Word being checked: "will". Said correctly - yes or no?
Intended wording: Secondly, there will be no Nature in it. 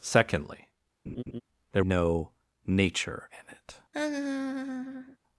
no